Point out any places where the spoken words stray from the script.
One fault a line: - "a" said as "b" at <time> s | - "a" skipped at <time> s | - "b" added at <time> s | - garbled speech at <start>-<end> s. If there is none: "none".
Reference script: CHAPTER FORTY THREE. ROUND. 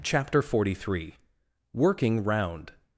- "WORKING" added at 1.7 s